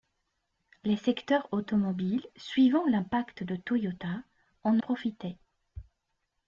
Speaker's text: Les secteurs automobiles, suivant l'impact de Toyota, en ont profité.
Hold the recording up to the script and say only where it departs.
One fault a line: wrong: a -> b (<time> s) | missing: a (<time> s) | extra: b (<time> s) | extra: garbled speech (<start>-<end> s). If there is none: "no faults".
missing: ont (4.8 s)